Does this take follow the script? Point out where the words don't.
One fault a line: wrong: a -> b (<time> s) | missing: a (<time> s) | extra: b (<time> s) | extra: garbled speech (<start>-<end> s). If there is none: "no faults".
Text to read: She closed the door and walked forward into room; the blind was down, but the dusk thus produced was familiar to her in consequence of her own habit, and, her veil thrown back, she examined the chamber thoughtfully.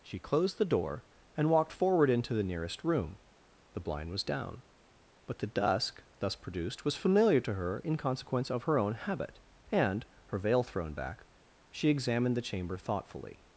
extra: the nearest (2.3 s)